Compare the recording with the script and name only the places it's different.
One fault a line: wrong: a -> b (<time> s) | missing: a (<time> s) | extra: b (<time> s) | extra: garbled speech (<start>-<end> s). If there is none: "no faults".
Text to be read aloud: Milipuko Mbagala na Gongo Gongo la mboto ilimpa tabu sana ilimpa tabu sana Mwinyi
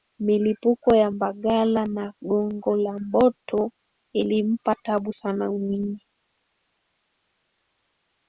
extra: ya (0.9 s)
missing: Gongo (2.8 s)
missing: ilimpa tabu sana (5.5 s)